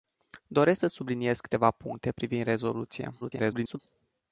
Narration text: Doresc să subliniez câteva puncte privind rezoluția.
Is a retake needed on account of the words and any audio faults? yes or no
yes